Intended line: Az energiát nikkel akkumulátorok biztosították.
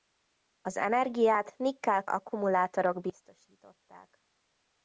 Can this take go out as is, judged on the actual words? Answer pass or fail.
pass